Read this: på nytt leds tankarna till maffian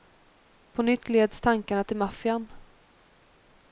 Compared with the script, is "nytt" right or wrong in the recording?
right